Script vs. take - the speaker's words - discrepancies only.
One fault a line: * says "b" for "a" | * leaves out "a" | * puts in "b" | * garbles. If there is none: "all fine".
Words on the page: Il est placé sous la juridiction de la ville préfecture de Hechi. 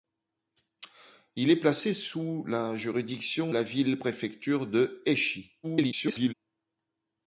* leaves out "de"
* garbles